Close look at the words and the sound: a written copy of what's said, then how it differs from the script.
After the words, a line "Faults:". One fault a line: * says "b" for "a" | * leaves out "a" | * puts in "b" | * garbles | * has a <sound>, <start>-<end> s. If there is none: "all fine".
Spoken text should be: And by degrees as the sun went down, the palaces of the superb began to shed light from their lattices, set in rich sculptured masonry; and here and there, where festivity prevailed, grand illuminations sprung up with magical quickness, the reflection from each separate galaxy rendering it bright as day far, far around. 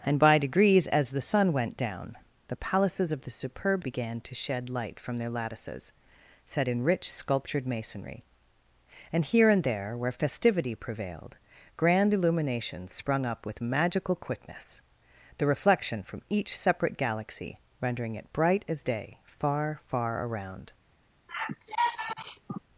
And by degrees as the sun went down, the palaces of the superb began to shed light from their lattices, set in rich sculptured masonry; and here and there, where festivity prevailed, grand illuminations sprung up with magical quickness, the reflection from each separate galaxy rendering it bright as day far, far around.
Faults:
* has a sigh, 21.3-22.6 s